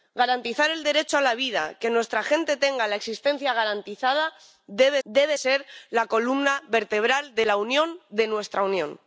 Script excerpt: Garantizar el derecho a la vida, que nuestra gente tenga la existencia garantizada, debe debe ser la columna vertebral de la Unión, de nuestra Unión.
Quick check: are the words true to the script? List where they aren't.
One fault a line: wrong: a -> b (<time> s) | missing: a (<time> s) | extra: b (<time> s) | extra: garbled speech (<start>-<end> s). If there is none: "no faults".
no faults